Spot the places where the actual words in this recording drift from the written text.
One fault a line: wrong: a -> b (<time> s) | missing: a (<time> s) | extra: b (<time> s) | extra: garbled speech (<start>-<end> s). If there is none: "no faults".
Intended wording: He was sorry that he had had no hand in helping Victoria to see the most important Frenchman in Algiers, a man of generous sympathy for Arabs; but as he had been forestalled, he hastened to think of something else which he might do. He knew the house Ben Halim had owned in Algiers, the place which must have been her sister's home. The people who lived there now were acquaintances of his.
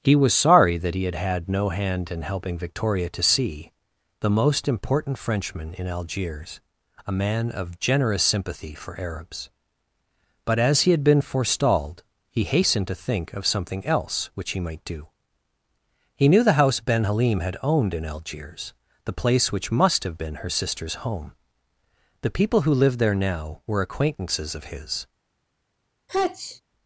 no faults